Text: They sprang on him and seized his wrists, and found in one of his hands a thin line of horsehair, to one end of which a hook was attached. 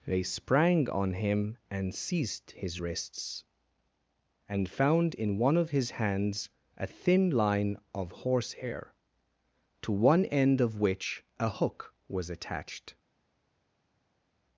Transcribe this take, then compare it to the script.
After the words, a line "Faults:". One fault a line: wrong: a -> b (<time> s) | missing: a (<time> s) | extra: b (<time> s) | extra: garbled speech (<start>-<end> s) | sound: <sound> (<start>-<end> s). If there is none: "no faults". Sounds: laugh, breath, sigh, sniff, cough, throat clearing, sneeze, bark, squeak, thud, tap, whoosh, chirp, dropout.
They sprang on him and seized his wrists, and found in one of his hands a thin line of horsehair, to one end of which a hook was attached.
Faults:
no faults